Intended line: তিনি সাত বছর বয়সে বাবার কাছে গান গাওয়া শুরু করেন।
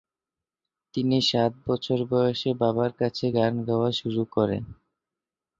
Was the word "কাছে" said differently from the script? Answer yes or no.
no